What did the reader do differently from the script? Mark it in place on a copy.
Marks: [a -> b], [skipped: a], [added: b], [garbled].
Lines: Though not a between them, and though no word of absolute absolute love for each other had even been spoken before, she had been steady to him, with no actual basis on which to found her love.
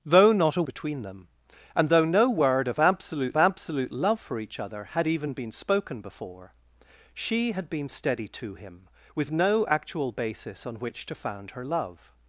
Though not a between them, and though no word of absolute absolute love for each other had even been spoken before, she had been steady to him, with no actual basis on which to found her love.